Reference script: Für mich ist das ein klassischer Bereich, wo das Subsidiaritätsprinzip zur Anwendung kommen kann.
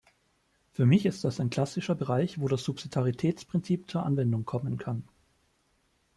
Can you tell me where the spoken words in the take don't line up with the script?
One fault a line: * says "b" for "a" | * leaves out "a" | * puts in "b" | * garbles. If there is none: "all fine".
all fine